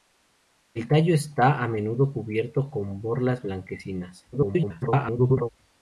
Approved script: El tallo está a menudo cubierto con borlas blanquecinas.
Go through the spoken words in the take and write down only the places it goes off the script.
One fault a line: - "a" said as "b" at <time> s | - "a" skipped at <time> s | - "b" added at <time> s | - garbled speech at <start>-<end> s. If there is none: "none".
- garbled speech at 4.3-5.5 s